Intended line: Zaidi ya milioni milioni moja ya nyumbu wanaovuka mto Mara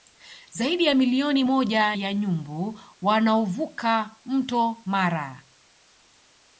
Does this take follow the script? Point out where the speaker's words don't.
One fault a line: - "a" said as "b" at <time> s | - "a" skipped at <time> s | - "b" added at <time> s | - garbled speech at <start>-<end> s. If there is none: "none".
- "milioni" skipped at 1.4 s